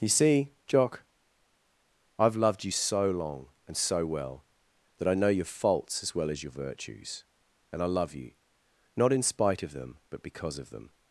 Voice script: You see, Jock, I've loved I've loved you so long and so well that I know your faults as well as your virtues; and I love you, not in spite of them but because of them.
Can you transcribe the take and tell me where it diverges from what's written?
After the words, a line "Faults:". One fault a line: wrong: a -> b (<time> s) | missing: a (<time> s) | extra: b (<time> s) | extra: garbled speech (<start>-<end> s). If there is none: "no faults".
You see, Jock, I've loved you so long and so well that I know your faults as well as your virtues; and I love you, not in spite of them but because of them.
Faults:
missing: I've loved (2.6 s)